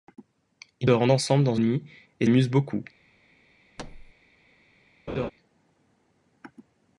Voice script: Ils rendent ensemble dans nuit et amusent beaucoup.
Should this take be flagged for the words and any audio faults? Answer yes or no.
yes